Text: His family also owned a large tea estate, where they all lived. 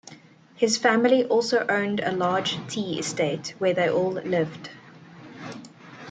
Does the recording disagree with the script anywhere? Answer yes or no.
no